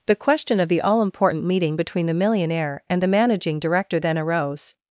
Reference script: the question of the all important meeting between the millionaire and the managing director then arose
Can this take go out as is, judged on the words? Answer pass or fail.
pass